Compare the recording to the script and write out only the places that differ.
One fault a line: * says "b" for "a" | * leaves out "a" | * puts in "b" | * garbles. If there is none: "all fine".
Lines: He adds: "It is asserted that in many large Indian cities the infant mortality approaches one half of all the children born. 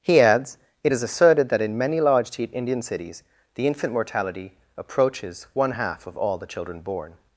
all fine